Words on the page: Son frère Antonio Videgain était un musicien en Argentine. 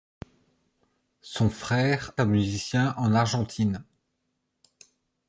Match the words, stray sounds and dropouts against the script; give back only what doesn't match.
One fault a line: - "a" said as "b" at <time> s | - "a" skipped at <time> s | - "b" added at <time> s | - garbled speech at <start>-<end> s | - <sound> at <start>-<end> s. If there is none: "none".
- "Antonio Videgain était" skipped at 2.1 s